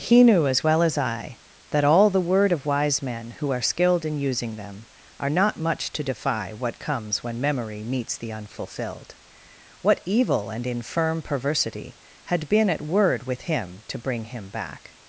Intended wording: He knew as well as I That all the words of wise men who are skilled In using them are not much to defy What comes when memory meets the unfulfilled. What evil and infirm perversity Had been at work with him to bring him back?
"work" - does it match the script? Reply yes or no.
no